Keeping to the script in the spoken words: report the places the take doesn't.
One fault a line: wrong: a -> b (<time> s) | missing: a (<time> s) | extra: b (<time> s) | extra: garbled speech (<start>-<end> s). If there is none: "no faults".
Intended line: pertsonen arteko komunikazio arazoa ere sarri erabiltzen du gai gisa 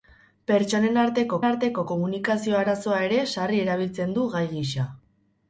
extra: arteko (1.5 s)